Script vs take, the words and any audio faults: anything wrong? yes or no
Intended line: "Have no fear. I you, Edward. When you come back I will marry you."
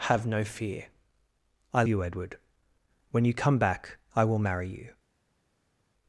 no